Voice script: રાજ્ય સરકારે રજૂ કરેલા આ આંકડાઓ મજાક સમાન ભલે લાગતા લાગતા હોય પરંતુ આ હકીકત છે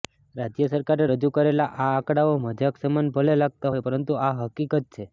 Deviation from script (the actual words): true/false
true